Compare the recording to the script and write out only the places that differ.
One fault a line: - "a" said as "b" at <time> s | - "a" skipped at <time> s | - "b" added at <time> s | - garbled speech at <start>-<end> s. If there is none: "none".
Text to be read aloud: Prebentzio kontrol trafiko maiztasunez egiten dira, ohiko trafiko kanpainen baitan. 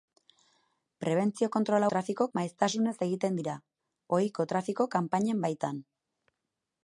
none